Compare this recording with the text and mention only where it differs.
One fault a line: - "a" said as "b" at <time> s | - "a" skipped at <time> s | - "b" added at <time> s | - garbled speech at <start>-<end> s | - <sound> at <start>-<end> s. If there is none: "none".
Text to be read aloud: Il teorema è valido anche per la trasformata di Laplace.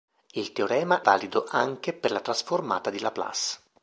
- "è" skipped at 1.0 s